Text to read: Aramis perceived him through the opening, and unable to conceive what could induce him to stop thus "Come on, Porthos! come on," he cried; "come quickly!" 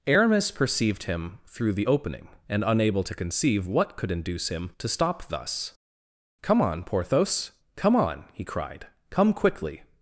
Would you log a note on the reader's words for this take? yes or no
no